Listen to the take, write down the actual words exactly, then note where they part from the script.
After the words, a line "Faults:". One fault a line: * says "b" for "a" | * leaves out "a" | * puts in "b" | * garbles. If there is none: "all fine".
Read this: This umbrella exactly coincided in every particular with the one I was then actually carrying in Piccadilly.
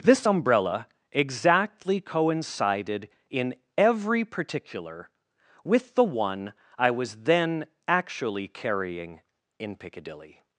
This umbrella exactly coincided in every particular with the one I was then actually carrying in Piccadilly.
Faults:
all fine